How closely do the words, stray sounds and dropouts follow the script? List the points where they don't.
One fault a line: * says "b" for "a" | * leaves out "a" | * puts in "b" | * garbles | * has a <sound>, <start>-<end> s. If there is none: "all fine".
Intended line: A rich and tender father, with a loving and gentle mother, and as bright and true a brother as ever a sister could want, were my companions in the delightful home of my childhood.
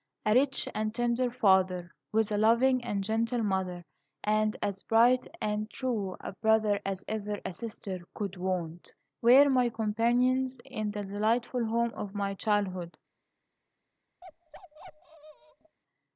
* has a bark, 14.2-15.8 s